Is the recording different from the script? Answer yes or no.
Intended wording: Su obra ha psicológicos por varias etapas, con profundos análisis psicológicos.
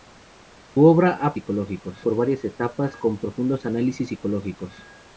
no